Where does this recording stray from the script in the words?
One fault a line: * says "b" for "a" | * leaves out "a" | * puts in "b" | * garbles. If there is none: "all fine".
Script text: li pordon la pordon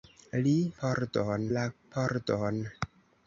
all fine